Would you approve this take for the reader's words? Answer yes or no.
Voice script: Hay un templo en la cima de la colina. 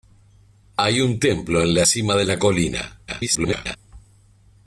no